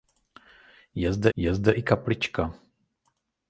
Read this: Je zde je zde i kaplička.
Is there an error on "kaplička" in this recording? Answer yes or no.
no